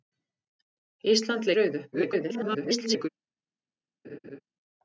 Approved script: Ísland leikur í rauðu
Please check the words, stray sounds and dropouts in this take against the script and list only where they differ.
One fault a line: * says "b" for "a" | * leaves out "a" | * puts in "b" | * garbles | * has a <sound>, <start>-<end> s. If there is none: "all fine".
* leaves out "leikur"
* garbles
* has a laugh, 4.0-4.4 s